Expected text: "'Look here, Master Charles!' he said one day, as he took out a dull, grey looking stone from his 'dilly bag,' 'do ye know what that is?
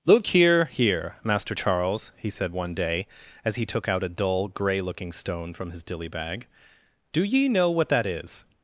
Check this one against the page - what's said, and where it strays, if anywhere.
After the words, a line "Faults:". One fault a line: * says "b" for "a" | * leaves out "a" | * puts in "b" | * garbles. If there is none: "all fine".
"'Look here here, Master Charles!' he said one day, as he took out a dull, grey looking stone from his 'dilly bag,' 'do ye know what that is?
Faults:
* puts in "here"